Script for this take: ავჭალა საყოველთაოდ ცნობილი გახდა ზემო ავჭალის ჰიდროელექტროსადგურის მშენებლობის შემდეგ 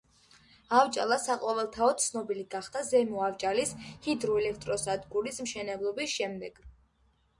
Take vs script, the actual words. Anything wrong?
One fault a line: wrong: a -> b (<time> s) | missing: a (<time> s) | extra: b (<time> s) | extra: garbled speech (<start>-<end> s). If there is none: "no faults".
no faults